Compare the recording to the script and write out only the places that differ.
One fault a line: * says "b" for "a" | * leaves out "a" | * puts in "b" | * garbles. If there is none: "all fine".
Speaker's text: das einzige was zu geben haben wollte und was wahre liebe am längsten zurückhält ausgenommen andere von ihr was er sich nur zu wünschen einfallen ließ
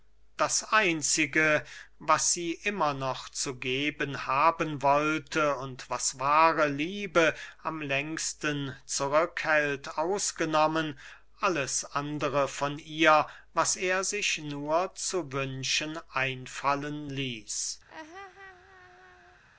* puts in "sie immer noch"
* puts in "alles"